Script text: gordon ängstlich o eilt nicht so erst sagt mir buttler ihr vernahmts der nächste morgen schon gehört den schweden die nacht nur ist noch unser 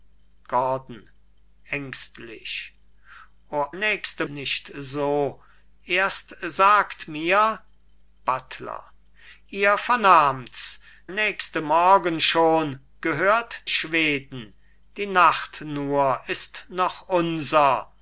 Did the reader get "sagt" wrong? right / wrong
right